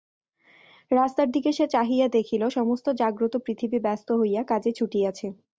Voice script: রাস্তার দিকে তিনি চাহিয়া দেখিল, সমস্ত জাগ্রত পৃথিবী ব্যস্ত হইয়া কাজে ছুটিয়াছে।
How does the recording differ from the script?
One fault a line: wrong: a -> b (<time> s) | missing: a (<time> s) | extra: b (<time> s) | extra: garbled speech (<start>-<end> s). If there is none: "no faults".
wrong: তিনি -> সে (1.5 s)